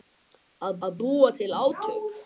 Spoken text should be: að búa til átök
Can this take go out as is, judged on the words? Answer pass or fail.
fail